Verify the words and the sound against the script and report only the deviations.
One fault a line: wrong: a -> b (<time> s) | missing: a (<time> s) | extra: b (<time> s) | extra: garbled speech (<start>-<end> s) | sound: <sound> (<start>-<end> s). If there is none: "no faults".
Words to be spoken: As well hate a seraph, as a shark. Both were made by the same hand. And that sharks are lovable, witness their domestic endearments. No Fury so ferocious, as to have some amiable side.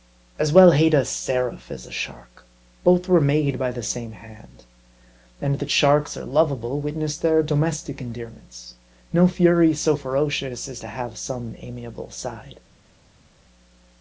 no faults